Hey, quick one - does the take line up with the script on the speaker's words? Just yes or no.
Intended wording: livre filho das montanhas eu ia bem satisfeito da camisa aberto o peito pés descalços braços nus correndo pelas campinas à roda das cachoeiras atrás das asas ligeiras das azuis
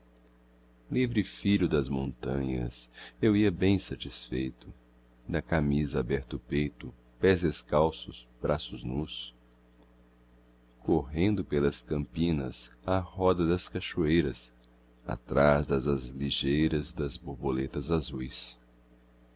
no